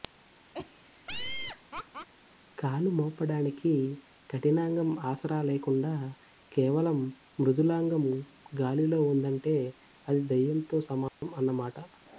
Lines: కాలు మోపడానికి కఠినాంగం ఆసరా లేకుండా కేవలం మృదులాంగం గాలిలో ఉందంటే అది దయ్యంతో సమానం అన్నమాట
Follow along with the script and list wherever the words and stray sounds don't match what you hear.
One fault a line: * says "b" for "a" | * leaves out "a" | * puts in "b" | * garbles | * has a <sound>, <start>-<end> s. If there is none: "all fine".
* has a laugh, 0.5-2.1 s
* has a dropout, 11.1-11.2 s